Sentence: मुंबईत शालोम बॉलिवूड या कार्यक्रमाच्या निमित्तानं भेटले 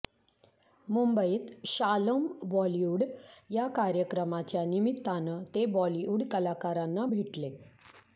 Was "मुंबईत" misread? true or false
false